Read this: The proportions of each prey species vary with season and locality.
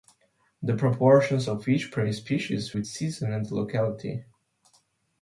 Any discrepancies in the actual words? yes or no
yes